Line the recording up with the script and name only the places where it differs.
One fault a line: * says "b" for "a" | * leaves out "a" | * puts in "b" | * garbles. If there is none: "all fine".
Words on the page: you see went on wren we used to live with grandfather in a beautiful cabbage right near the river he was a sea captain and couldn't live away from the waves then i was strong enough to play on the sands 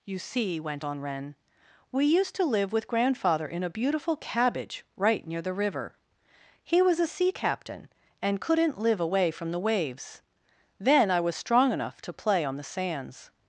all fine